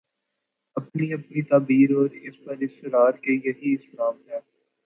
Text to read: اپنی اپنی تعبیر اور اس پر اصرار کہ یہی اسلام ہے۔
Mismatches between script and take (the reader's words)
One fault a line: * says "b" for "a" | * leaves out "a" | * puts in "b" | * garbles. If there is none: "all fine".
all fine